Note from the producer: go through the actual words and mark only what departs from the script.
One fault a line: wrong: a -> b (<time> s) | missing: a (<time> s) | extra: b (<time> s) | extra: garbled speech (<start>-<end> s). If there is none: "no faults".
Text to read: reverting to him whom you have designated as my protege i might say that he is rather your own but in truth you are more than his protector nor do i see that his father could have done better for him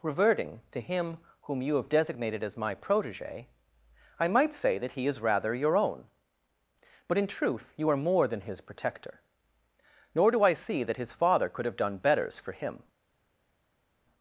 wrong: better -> betters (12.0 s)